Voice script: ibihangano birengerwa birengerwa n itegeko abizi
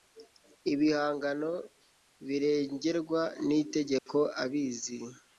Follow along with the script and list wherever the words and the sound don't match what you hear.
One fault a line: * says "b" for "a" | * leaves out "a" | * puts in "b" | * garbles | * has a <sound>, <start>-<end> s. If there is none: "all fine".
* leaves out "birengerwa"
* has a dropout, 4.0-4.1 s